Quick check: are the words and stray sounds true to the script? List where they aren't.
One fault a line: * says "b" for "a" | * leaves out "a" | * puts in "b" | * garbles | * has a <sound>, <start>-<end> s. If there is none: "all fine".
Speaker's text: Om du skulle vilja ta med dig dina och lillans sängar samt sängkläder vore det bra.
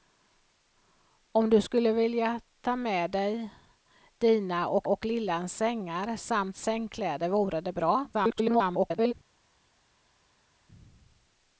* puts in "och"
* garbles